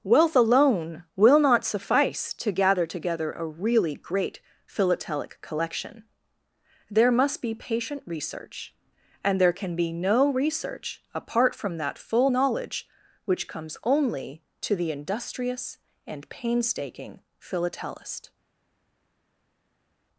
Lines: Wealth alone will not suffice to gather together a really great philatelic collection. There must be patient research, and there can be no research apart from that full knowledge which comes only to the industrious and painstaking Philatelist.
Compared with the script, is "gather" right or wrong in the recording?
right